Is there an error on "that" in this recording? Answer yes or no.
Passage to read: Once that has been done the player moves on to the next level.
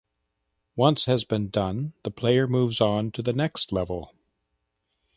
yes